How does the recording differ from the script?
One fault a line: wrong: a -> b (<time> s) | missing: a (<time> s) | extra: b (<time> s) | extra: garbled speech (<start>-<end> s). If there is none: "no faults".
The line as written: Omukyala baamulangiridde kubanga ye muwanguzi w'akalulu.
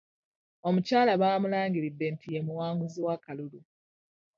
wrong: kubanga -> nti (2.1 s)